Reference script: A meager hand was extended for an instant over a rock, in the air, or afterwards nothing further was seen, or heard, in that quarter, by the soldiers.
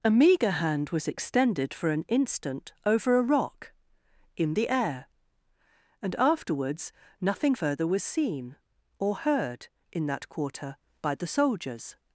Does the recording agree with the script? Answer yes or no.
no